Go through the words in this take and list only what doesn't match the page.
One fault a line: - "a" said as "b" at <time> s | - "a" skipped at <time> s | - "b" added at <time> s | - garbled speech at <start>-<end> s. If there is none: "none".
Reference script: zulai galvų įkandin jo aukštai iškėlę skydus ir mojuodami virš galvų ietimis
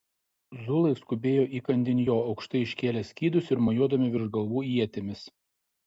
- "galvų" said as "skubėjo" at 1.0 s